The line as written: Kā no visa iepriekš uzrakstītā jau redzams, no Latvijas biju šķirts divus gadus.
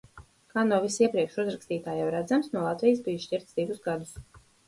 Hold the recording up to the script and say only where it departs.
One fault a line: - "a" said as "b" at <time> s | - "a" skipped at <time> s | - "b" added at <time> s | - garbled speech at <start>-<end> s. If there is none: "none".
none